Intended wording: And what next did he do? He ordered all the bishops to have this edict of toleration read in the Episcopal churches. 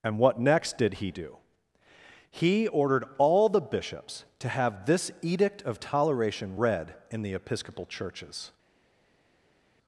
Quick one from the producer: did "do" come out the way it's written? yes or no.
yes